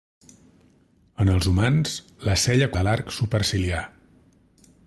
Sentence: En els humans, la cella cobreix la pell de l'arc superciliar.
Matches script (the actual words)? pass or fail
fail